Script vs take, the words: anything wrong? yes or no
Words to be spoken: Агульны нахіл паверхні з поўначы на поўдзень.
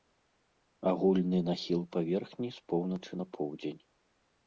no